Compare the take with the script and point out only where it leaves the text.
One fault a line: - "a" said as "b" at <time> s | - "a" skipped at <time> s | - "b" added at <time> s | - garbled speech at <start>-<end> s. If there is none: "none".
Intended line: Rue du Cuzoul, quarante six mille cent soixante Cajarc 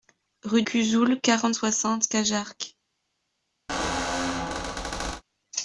- "du" skipped at 0.6 s
- "six mille cent" skipped at 1.5 s